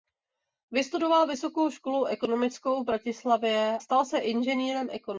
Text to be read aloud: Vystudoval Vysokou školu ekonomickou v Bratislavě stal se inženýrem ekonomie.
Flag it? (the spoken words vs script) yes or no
no